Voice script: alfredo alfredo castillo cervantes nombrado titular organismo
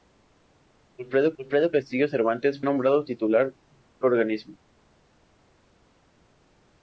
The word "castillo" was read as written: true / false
true